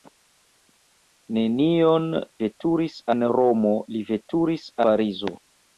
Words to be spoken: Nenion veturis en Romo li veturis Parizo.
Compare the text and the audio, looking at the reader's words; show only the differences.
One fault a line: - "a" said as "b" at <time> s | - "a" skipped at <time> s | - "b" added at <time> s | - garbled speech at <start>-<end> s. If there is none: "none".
none